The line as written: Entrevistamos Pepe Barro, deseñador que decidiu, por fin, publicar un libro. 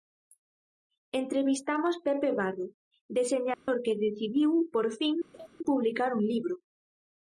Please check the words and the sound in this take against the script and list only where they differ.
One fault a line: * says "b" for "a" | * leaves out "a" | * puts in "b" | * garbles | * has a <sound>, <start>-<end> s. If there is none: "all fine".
* has a dropout, 3.5-3.7 s
* has a laugh, 5.3-5.5 s